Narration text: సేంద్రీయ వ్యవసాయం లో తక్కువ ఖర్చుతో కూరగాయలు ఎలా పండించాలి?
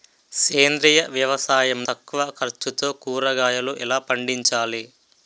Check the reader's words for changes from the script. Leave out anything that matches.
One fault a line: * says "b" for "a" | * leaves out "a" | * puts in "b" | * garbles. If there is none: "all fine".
* leaves out "లో"